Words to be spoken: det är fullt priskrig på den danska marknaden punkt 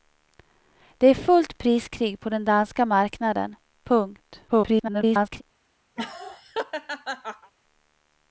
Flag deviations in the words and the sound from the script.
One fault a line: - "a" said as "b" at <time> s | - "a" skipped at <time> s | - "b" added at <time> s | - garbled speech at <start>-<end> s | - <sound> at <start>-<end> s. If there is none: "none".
- garbled speech at 4.5-5.4 s
- laugh at 6.0-7.5 s